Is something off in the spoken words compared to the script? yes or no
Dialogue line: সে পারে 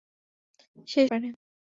no